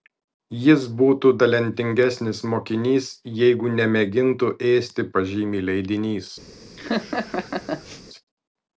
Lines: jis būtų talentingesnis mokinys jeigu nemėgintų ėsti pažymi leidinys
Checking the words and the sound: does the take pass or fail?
fail